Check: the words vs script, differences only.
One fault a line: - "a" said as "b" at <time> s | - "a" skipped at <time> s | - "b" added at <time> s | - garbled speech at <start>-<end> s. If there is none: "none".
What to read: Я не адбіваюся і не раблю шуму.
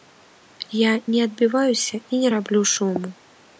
none